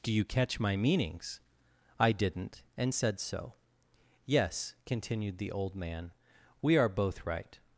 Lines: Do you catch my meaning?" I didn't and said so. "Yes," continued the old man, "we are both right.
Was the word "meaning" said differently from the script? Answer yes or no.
yes